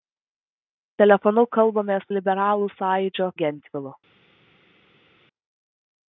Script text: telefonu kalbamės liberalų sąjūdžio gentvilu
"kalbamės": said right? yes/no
yes